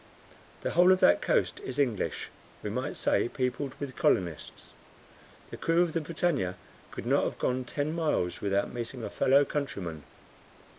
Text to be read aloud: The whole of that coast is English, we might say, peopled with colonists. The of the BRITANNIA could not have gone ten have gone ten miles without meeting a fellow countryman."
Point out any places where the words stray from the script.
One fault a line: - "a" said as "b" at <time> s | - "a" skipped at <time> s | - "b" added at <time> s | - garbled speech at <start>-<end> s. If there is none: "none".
- "crew" added at 5.6 s
- "have gone ten" skipped at 7.9 s